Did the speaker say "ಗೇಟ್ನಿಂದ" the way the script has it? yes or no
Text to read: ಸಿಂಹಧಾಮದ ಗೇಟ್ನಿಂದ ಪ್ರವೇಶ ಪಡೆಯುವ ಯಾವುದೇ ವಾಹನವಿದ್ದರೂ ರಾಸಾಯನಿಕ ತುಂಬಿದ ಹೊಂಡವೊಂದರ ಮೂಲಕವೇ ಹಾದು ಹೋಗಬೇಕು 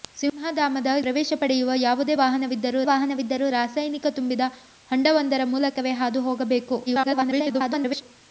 no